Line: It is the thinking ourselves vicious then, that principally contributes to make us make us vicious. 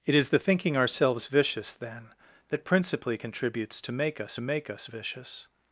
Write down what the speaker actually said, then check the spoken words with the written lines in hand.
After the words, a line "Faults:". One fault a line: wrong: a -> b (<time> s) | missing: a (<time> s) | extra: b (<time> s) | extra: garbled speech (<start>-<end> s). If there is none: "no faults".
It is the thinking ourselves vicious then, that principally contributes to make us make us vicious.
Faults:
no faults